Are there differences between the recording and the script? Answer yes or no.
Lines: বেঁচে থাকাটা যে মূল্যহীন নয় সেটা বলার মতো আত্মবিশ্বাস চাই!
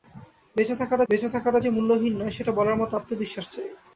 yes